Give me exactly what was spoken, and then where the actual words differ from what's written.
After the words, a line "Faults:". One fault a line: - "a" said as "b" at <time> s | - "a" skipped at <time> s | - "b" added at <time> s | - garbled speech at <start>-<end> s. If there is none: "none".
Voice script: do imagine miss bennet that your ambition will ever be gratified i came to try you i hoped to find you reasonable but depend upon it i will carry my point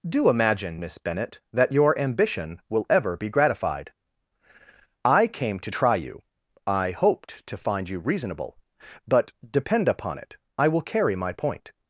do imagine miss bennet that your ambition will ever be gratified i came to try you i hoped to find you reasonable but depend upon it i will carry my point
Faults:
none